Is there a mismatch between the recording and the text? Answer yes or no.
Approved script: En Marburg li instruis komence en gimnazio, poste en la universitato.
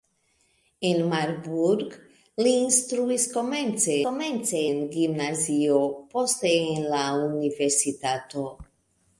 yes